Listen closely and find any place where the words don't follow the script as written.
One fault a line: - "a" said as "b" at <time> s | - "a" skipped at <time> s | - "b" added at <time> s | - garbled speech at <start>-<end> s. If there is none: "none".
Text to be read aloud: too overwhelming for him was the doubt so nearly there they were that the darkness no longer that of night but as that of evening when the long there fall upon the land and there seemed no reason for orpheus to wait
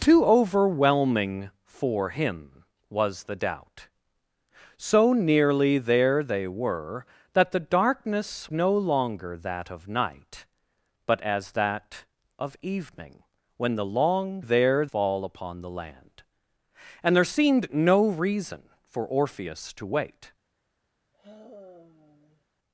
none